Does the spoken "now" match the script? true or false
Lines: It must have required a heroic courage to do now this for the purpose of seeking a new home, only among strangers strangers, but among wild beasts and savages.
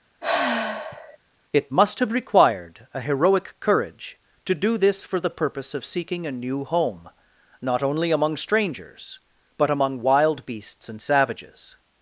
false